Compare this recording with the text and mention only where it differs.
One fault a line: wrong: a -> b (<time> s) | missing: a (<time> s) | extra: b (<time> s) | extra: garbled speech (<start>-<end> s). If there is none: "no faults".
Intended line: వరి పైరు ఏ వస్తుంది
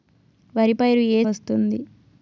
no faults